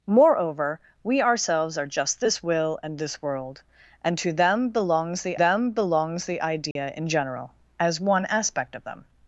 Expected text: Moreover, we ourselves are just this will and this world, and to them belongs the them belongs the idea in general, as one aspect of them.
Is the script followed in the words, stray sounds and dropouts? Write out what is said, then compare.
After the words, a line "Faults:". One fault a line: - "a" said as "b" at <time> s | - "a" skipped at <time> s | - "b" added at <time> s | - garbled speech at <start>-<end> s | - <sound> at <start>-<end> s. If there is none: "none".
Moreover, we ourselves are just this will and this world, and to them belongs the them belongs the idea in general, as one aspect of them.
Faults:
- dropout at 6.7-6.8 s